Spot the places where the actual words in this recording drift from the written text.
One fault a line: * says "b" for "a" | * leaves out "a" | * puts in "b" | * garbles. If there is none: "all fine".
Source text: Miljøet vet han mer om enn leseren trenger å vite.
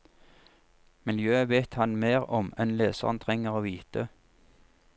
all fine